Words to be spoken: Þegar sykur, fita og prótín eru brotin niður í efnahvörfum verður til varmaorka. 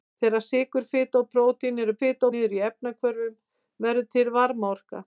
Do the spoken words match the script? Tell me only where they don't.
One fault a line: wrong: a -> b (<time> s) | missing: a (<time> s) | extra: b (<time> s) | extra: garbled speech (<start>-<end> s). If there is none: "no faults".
wrong: brotin -> fita (2.0 s)